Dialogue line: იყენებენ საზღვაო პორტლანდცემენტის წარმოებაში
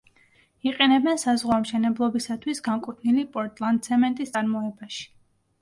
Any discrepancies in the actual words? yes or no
yes